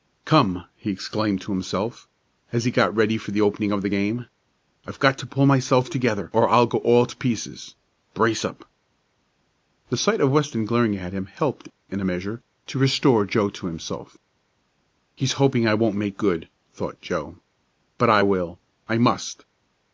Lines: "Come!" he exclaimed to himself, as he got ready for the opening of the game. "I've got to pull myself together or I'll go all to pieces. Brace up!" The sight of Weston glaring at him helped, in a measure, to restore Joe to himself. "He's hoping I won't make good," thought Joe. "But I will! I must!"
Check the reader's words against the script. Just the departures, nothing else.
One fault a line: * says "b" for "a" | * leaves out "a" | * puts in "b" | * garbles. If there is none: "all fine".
all fine